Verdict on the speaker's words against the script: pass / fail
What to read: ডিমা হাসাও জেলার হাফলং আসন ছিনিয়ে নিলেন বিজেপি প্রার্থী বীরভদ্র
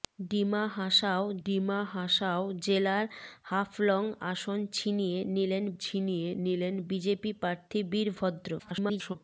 fail